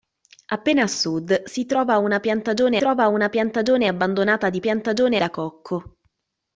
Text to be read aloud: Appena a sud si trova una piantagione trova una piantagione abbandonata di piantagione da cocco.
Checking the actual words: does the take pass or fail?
pass